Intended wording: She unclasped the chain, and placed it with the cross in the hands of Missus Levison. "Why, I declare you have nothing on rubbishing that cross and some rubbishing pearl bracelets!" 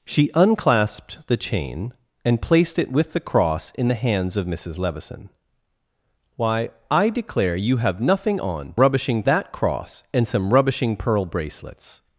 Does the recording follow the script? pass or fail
pass